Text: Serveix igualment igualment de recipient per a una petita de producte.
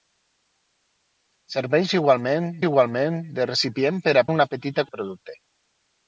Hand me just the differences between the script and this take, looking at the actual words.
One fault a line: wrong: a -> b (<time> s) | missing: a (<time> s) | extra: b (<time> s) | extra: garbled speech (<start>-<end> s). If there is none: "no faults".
no faults